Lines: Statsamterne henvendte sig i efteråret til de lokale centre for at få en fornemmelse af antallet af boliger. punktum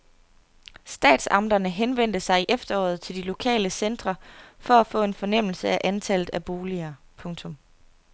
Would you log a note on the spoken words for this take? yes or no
no